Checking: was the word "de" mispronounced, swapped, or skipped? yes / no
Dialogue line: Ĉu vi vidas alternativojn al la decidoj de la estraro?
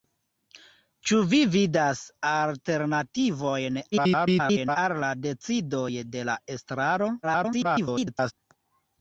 no